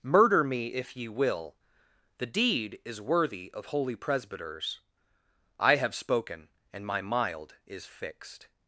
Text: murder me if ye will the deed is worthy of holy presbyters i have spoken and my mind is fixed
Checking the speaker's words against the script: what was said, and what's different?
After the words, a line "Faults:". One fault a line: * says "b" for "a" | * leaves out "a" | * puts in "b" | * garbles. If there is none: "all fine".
murder me if ye will the deed is worthy of holy presbyters i have spoken and my mild is fixed
Faults:
* says "mild" for "mind"